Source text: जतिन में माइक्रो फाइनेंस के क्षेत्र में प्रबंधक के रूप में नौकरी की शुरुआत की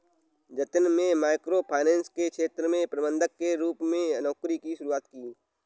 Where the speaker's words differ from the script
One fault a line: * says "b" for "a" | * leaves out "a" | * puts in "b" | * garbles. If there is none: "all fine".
all fine